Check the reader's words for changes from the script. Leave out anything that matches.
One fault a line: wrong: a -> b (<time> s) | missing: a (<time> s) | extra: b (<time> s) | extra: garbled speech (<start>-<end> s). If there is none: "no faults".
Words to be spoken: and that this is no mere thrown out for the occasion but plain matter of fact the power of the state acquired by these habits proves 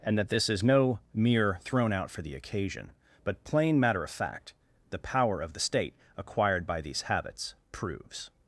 no faults